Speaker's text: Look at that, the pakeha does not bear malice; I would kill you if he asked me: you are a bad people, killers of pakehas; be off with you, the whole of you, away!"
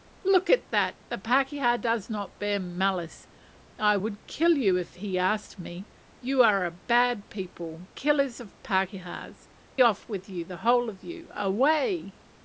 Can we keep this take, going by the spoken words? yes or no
no